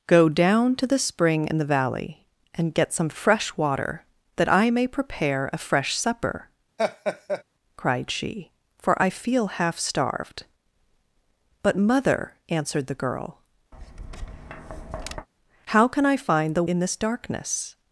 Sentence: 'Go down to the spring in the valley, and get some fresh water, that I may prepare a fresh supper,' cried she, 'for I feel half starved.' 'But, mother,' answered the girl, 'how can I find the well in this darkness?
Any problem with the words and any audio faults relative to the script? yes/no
yes